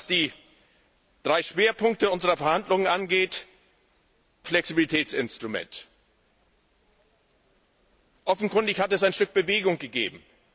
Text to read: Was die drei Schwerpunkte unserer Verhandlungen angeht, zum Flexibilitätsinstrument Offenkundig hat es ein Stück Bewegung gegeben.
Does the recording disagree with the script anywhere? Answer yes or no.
yes